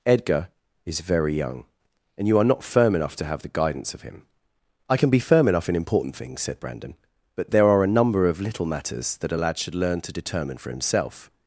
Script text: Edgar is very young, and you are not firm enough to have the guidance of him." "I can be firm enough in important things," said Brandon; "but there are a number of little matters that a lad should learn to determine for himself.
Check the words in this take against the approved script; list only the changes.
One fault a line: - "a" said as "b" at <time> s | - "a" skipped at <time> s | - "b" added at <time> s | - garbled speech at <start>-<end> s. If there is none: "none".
none